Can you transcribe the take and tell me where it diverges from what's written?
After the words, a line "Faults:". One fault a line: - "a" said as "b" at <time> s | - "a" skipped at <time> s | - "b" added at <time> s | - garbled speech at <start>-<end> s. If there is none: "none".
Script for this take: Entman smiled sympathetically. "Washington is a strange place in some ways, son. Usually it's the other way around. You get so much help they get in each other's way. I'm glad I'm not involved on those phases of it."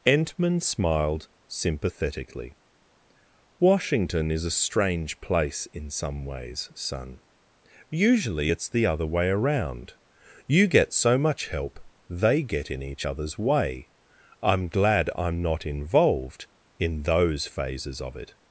Entman smiled sympathetically. "Washington is a strange place in some ways, son. Usually it's the other way around. You get so much help they get in each other's way. I'm glad I'm not involved in those phases of it."
Faults:
- "on" said as "in" at 16.8 s